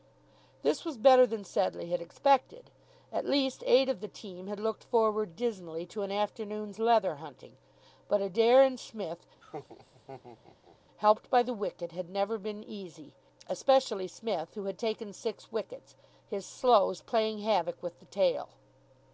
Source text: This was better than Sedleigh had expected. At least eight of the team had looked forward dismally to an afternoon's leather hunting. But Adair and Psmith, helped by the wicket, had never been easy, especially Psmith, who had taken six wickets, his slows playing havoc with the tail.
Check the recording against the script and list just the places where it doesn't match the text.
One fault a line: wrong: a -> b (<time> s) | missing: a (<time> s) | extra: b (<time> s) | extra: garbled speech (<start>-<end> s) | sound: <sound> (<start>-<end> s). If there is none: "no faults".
sound: laugh (9.4-10.8 s)